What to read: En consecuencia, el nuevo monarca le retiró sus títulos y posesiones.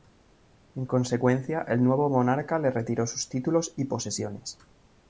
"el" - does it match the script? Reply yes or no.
yes